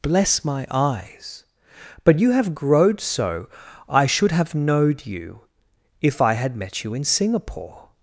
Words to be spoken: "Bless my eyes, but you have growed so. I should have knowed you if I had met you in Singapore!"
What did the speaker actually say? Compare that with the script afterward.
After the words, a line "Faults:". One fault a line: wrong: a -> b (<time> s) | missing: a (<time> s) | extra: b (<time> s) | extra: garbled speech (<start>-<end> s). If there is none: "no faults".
"Bless my eyes, but you have growed so. I should have knowed you if I had met you in Singapore!"
Faults:
no faults